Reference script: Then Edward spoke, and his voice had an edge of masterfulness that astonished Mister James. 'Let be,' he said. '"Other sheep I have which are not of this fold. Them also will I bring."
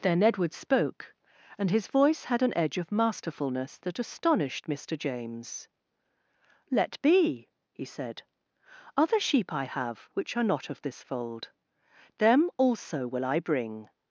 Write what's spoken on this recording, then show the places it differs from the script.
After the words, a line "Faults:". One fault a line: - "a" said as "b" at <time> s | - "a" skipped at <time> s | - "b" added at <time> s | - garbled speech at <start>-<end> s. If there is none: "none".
Then Edward spoke, and his voice had an edge of masterfulness that astonished Mister James. 'Let be,' he said. '"Other sheep I have which are not of this fold. Them also will I bring."
Faults:
none